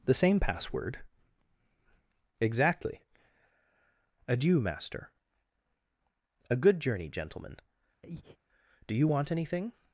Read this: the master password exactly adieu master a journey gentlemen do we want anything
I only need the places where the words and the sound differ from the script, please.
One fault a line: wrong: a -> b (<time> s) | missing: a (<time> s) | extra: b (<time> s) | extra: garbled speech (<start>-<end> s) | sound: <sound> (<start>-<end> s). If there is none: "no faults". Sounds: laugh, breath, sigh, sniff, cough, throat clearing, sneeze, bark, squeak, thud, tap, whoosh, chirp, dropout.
wrong: master -> same (0.1 s)
extra: good (6.5 s)
sound: breath (8.0-8.4 s)
wrong: we -> you (8.9 s)